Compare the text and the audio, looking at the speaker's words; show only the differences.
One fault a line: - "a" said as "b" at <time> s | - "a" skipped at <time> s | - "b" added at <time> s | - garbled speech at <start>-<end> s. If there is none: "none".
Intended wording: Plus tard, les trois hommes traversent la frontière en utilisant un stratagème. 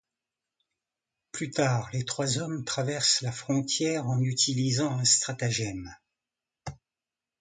none